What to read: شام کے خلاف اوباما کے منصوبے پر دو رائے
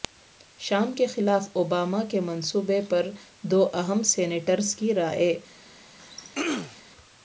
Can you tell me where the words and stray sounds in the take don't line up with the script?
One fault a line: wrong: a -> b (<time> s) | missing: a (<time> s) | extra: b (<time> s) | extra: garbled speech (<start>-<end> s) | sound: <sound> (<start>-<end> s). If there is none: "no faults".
extra: اہم سینیٹرز کی (3.7 s)
sound: throat clearing (6.0-6.8 s)